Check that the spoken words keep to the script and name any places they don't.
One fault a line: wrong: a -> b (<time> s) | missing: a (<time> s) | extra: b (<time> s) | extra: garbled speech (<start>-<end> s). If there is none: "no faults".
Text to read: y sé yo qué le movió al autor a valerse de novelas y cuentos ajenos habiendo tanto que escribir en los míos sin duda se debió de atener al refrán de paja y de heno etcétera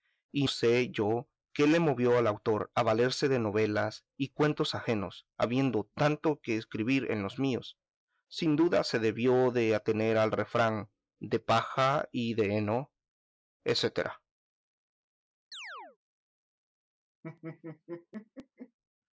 no faults